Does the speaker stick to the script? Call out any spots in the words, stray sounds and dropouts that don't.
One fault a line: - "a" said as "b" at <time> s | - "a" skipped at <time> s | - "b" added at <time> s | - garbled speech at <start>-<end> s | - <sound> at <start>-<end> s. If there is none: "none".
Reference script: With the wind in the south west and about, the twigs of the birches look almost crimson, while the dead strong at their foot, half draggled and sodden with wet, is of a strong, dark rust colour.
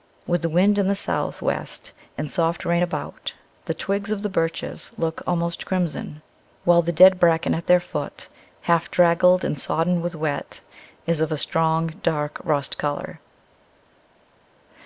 - "soft rain" added at 2.3 s
- "strong" said as "bracken" at 7.2 s